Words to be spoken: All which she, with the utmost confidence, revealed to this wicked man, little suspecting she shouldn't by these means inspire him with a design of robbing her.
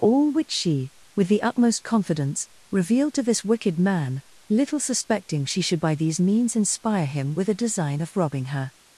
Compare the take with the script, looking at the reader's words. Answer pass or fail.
fail